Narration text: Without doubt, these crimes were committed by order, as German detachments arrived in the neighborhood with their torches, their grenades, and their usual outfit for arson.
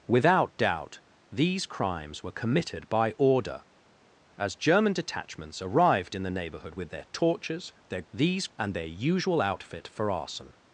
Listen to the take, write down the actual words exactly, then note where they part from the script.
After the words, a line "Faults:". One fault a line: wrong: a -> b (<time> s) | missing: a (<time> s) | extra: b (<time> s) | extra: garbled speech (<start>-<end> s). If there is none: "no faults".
Without doubt, these crimes were committed by order, as German detachments arrived in the neighborhood with their torches, their these, and their usual outfit for arson.
Faults:
wrong: grenades -> these (8.1 s)